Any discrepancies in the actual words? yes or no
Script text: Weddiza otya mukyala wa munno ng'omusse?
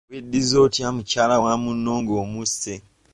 no